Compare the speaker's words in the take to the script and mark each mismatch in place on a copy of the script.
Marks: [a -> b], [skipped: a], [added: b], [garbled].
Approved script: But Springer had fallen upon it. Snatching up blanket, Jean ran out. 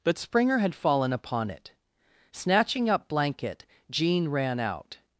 But Springer had fallen upon it. Snatching up blanket, Jean ran out.